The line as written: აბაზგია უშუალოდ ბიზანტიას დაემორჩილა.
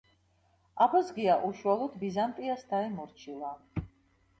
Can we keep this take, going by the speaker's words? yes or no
yes